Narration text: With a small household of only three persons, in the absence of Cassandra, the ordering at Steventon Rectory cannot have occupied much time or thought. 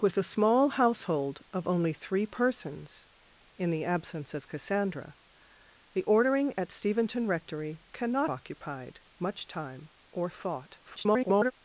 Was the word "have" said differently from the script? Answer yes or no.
yes